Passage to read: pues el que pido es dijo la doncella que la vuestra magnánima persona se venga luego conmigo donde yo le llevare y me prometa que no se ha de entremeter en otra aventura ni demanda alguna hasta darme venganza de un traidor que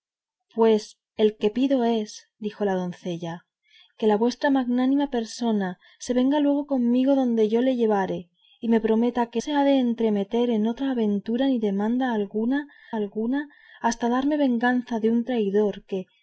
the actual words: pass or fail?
fail